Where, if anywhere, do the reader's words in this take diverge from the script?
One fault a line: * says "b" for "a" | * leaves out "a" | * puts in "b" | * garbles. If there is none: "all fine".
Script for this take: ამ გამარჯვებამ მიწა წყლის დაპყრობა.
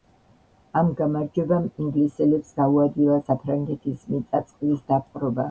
* puts in "ინგლისელებს გაუადვილა საფრანგეთის"